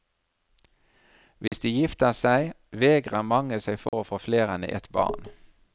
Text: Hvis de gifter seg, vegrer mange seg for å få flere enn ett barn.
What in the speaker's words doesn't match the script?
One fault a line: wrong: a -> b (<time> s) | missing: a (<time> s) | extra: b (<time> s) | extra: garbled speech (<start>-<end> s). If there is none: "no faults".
no faults